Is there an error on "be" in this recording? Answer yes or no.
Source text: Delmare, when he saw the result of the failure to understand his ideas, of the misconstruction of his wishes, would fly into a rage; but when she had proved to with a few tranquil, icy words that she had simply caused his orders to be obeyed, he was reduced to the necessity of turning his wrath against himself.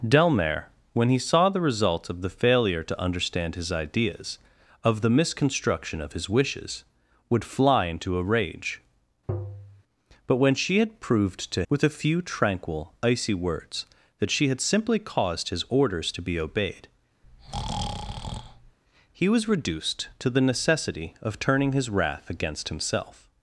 no